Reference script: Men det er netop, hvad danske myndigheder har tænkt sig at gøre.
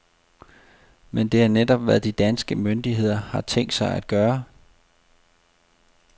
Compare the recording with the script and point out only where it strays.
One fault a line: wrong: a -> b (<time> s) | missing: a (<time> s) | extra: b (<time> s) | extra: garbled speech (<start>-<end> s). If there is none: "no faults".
extra: de (2.0 s)